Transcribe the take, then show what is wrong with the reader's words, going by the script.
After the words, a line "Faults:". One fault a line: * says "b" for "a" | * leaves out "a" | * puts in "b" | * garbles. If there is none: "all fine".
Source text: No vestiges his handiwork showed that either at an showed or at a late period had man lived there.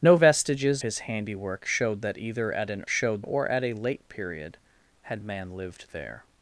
No vestiges his handiwork showed that either at an showed or at a late period had man lived there.
Faults:
all fine